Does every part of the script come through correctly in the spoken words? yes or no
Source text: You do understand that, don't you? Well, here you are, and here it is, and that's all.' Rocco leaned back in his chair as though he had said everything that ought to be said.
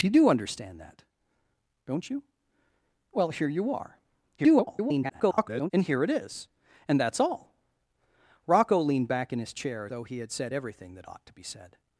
no